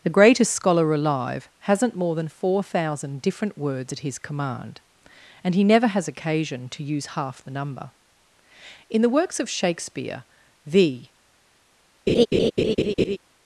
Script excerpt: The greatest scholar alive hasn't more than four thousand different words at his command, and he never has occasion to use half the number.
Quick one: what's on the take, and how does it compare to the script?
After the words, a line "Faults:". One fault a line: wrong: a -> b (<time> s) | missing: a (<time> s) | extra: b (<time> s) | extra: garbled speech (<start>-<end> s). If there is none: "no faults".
The greatest scholar alive hasn't more than four thousand different words at his command, and he never has occasion to use half the number. In the works of Shakespeare, the
Faults:
extra: In the works of Shakespeare the (8.9 s)